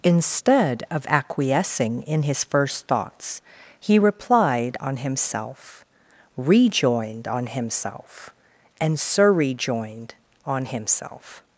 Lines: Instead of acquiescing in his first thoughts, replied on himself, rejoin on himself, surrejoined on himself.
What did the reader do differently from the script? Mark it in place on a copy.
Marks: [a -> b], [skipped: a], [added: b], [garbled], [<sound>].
Instead of acquiescing in his first thoughts, [added: he] replied on himself, [rejoin -> rejoined] on himself, [added: and] surrejoined on himself.